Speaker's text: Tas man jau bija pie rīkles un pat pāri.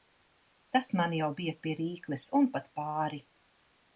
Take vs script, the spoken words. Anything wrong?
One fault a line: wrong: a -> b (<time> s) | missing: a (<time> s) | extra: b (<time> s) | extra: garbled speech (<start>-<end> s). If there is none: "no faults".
no faults